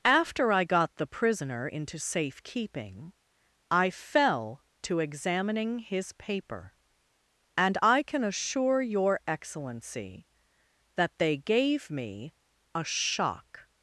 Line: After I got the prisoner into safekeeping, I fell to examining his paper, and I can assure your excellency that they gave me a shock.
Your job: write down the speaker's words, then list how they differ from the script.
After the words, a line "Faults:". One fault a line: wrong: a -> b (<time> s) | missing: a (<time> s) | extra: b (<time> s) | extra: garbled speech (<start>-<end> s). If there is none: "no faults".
After I got the prisoner into safekeeping, I fell to examining his paper, and I can assure your excellency that they gave me a shock.
Faults:
no faults